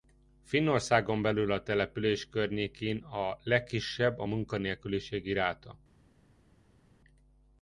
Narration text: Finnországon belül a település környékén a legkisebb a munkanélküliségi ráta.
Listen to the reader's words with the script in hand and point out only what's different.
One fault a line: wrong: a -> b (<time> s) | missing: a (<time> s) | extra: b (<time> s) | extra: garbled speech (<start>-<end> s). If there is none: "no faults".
no faults